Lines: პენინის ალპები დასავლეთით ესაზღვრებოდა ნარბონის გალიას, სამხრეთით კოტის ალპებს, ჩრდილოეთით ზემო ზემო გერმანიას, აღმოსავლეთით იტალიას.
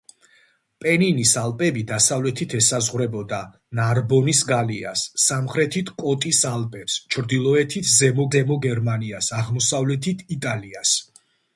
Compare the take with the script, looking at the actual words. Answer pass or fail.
pass